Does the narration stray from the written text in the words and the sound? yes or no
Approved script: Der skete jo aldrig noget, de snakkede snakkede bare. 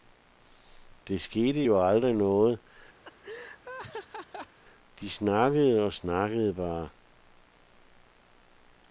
yes